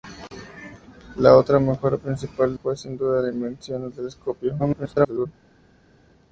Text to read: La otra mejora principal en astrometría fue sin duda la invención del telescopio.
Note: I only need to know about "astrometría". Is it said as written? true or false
false